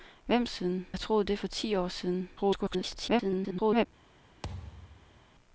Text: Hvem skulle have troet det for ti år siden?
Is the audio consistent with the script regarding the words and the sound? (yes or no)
no